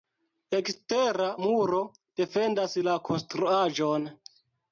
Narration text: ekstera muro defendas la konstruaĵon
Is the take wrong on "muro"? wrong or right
right